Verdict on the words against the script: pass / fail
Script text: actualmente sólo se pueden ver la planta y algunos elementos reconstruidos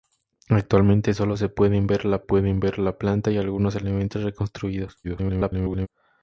fail